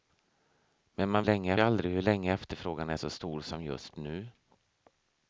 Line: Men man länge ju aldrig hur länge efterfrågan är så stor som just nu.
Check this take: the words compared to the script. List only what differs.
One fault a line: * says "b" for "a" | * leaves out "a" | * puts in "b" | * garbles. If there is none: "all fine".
all fine